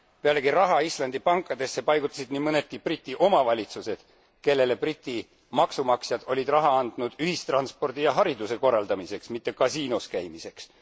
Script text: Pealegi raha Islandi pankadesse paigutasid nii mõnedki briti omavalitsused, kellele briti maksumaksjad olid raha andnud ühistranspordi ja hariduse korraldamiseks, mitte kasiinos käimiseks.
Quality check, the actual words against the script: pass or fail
pass